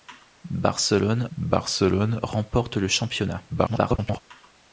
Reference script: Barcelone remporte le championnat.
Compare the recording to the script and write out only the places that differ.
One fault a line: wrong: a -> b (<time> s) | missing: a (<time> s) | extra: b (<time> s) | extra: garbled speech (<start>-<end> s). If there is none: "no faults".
extra: barcelone (1.4 s)
extra: garbled speech (3.5-4.2 s)